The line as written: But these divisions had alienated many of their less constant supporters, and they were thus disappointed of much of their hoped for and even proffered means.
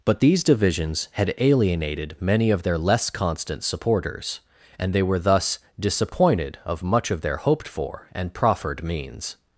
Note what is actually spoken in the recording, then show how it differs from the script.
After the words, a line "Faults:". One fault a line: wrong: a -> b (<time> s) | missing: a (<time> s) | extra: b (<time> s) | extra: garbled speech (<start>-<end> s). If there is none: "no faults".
But these divisions had alienated many of their less constant supporters, and they were thus disappointed of much of their hoped for and proffered means.
Faults:
missing: even (8.3 s)